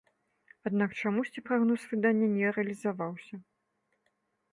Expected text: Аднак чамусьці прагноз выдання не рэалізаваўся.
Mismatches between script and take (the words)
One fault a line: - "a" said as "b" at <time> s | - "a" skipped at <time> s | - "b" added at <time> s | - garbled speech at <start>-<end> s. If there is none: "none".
none